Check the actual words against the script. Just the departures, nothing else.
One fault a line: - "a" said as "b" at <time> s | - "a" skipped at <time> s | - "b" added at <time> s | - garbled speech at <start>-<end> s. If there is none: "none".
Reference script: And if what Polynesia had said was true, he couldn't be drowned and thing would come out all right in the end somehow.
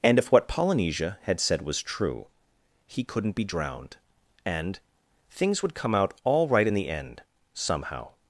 - "thing" said as "things" at 5.3 s